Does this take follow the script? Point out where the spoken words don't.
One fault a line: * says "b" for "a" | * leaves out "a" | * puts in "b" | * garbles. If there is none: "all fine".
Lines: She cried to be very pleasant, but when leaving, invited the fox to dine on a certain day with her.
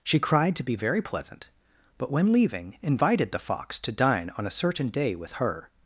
all fine